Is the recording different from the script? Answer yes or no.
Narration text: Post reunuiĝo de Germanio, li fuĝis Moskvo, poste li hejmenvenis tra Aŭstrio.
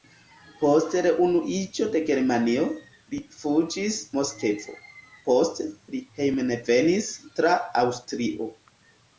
no